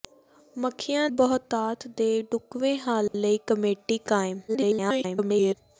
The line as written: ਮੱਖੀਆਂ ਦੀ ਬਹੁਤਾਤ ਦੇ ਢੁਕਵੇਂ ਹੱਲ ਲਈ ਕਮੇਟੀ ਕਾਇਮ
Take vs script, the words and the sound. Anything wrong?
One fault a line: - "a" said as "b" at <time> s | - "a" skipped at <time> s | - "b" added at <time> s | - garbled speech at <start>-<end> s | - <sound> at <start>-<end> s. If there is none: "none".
- "ਦੀ" skipped at 1.1 s
- dropout at 3.1-3.1 s
- garbled speech at 4.5-5.5 s